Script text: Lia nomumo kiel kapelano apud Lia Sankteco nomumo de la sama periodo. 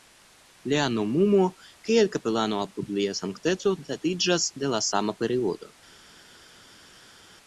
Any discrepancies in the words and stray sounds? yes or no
yes